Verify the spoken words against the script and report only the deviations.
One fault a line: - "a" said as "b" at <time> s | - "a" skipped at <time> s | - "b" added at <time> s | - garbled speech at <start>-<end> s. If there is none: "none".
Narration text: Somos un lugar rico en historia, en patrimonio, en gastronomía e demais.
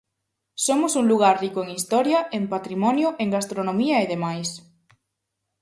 none